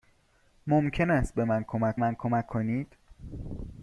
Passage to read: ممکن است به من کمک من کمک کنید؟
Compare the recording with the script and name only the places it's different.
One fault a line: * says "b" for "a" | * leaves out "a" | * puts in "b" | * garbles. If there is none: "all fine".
all fine